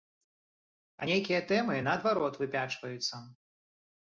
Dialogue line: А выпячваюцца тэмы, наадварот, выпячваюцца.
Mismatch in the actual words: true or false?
true